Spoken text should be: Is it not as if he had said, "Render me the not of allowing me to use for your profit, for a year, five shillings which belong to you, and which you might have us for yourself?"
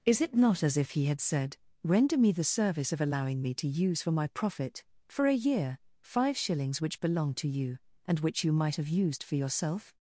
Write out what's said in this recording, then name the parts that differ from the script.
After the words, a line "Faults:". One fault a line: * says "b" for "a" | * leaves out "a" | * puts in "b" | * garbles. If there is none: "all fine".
Is it not as if he had said, "Render me the service of allowing me to use for my profit, for a year, five shillings which belong to you, and which you might have used for yourself?"
Faults:
* says "service" for "not"
* says "my" for "your"
* says "used" for "us"